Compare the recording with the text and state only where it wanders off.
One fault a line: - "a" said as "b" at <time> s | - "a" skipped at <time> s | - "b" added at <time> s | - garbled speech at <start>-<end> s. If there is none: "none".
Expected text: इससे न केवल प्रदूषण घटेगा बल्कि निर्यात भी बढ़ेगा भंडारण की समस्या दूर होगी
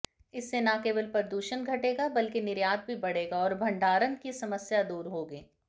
- "और" added at 3.4 s